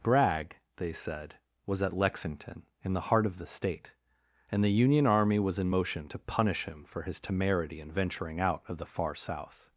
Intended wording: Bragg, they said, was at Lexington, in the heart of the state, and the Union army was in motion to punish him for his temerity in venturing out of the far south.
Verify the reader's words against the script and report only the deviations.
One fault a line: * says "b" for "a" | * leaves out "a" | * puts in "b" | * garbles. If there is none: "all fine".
all fine